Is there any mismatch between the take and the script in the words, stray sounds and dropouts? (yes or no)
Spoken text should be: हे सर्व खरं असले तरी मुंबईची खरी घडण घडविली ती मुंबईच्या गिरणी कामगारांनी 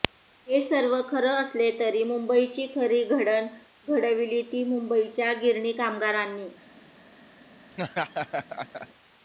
yes